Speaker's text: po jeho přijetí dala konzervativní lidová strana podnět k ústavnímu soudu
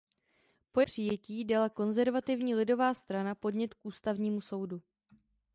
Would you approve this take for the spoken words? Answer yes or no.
no